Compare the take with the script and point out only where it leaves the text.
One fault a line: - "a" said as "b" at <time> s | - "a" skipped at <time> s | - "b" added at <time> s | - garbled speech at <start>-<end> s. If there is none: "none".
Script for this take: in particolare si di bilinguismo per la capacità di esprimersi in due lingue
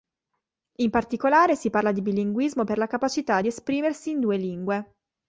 - "parla" added at 1.7 s